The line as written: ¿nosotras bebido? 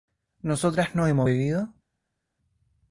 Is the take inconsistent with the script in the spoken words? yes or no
yes